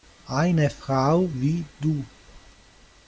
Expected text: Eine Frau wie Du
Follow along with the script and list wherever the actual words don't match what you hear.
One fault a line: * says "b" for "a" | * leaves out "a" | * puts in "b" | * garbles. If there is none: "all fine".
all fine